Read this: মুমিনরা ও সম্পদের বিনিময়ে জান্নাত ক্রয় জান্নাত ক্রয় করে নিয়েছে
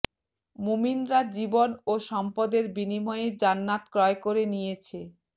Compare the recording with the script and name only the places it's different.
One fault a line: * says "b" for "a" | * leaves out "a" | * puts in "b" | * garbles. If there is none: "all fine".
* puts in "জীবন"
* leaves out "জান্নাত ক্রয়"